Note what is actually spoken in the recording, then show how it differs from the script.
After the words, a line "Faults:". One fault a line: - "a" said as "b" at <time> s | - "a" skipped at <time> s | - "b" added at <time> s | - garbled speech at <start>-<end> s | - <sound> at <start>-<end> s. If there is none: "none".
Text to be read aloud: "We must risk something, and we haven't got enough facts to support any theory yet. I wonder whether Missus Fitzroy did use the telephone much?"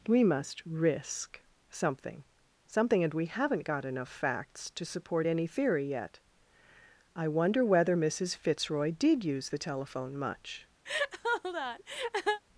"We must risk something something, and we haven't got enough facts to support any theory yet. I wonder whether Missus Fitzroy did use the telephone much?"
Faults:
- "something" added at 2.6 s
- laugh at 10.9-12.4 s